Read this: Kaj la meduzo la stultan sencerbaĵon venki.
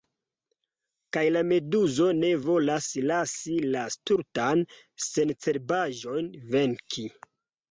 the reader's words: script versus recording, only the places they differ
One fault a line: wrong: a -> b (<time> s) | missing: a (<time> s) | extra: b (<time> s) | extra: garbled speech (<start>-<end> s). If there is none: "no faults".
extra: ne volas lasi (2.2 s)